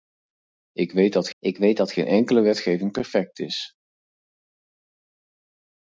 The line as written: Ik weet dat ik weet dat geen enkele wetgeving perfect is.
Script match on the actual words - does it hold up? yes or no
yes